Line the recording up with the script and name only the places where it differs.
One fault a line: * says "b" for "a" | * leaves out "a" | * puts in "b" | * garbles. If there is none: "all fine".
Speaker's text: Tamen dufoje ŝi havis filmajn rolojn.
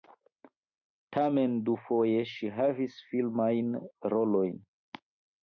all fine